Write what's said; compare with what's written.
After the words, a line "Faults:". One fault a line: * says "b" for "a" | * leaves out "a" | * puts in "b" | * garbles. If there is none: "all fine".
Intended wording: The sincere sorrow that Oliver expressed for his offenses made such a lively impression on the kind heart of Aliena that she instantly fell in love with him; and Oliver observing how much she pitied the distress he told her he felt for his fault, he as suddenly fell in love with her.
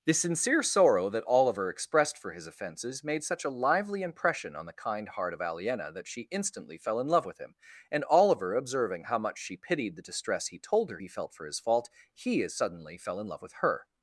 The sincere sorrow that Oliver expressed for his offenses made such a lively impression on the kind heart of Aliena that she instantly fell in love with him; and Oliver observing how much she pitied the distress he told her he felt for his fault, he as suddenly fell in love with her.
Faults:
all fine